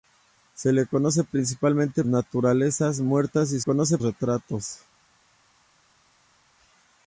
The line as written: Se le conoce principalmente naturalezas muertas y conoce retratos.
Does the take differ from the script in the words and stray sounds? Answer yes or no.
no